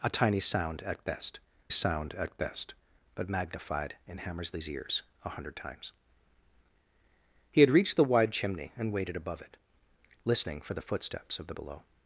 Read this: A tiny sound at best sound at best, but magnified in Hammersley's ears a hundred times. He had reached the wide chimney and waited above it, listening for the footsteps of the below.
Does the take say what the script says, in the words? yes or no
yes